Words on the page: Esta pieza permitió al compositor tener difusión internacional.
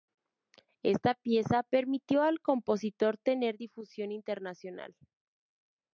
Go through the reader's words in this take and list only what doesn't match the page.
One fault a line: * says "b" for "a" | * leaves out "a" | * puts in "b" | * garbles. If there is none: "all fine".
all fine